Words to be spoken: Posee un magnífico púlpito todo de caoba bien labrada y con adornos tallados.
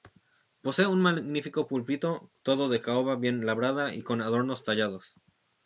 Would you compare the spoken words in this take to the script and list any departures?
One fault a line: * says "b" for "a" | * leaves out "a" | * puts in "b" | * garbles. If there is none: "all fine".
all fine